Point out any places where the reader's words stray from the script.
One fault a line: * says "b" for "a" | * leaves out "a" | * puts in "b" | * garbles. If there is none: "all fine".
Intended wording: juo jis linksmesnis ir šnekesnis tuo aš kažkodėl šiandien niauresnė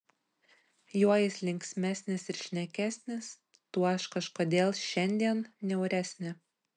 all fine